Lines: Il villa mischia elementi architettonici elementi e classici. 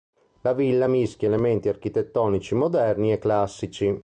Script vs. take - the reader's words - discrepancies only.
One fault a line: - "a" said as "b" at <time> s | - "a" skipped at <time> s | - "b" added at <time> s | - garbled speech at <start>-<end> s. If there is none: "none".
- "Il" said as "La" at 0.4 s
- "elementi" said as "moderni" at 2.5 s